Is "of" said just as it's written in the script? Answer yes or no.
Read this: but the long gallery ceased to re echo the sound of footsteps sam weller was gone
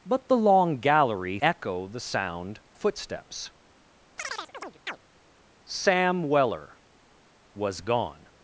no